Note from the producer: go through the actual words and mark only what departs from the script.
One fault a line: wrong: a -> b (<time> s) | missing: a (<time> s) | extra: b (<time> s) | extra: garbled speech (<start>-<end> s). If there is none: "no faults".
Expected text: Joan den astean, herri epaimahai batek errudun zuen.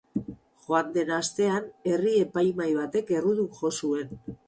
extra: jo (3.6 s)